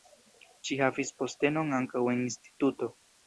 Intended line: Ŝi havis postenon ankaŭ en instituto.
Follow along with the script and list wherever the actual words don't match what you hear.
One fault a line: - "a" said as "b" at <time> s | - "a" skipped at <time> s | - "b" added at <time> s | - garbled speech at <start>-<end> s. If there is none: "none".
none